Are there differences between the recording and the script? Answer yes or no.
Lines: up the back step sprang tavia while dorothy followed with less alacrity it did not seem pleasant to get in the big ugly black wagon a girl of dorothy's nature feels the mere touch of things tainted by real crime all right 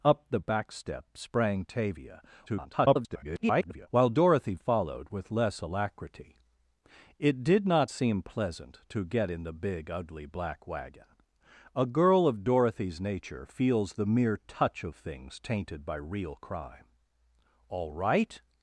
yes